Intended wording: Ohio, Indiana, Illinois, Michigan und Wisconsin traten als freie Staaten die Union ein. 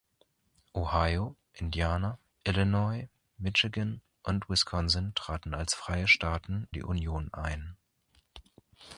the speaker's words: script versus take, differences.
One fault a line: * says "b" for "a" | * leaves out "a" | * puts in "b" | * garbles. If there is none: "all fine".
all fine